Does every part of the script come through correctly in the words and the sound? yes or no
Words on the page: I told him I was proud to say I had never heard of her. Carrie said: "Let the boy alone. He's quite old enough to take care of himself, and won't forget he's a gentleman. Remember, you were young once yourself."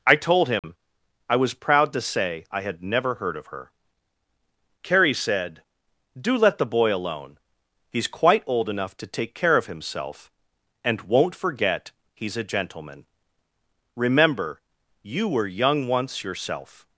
no